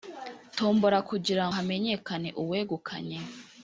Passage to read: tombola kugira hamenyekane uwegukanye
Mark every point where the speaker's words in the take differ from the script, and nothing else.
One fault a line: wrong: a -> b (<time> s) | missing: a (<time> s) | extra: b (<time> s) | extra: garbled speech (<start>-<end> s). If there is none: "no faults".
no faults